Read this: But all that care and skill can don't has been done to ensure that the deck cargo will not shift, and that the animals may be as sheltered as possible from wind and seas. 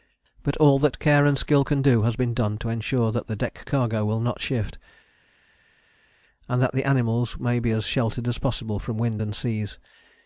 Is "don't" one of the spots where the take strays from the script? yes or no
yes